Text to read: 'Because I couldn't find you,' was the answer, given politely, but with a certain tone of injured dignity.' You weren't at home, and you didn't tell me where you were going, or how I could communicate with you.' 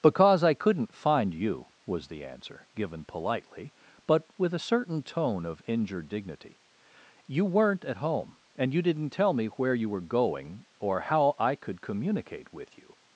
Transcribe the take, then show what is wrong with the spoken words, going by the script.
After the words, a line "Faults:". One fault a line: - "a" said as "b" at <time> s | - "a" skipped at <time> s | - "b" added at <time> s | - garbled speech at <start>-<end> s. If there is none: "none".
'Because I couldn't find you,' was the answer, given politely, but with a certain tone of injured dignity.' You weren't at home, and you didn't tell me where you were going, or how I could communicate with you.'
Faults:
none